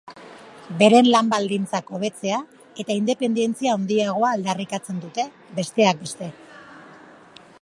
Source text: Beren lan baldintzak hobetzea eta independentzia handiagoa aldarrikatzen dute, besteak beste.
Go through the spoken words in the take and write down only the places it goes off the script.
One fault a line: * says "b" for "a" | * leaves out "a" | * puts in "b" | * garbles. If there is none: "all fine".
all fine